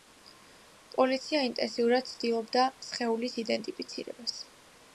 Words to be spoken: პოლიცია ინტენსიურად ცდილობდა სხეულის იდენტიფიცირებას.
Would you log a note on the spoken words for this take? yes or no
no